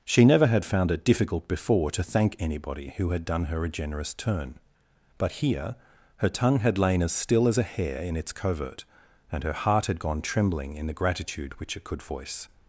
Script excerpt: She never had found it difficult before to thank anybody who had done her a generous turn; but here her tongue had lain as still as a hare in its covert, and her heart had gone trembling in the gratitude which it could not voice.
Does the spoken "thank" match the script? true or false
true